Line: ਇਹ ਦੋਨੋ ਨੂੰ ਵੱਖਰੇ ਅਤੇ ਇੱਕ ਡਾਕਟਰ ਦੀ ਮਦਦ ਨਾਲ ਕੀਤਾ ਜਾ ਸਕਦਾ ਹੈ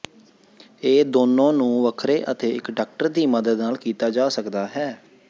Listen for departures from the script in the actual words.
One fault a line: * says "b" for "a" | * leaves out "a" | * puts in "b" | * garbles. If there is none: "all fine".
all fine